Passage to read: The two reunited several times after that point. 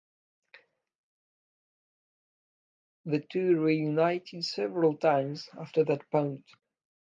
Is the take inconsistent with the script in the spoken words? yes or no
no